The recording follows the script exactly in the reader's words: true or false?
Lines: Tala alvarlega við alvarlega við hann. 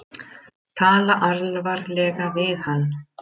false